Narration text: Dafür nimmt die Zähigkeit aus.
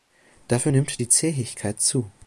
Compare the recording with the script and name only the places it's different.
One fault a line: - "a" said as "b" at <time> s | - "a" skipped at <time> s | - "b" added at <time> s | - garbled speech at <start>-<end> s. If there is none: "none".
- "aus" said as "zu" at 1.8 s